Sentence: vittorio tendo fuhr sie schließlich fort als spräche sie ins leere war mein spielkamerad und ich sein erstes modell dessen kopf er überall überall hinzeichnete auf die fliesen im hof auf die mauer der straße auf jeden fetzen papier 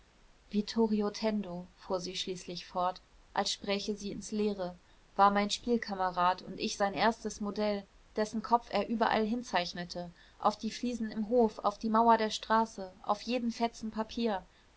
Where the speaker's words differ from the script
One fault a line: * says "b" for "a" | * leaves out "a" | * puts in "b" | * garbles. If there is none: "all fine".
* leaves out "überall"